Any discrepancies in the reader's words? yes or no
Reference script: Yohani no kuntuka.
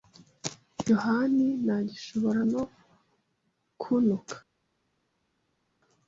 yes